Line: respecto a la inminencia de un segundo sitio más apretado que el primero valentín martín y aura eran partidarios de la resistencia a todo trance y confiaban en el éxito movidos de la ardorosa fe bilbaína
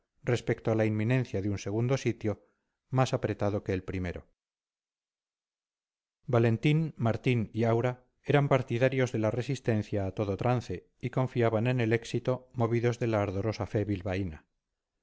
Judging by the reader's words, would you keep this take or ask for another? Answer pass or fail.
pass